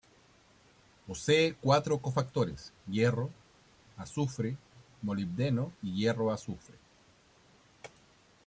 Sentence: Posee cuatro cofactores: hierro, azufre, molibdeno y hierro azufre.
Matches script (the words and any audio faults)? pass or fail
pass